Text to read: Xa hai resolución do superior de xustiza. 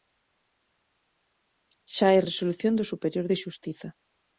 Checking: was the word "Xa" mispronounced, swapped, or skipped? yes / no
no